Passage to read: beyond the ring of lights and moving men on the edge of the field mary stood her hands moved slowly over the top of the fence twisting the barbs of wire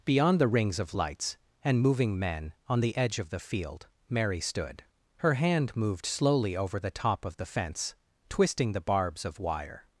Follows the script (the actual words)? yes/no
no